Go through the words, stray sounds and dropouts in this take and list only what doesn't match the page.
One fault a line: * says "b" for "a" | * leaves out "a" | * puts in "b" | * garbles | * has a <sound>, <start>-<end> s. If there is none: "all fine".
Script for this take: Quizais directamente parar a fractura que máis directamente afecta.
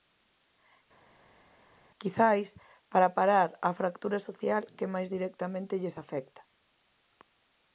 * says "para" for "directamente"
* puts in "social"
* puts in "lles"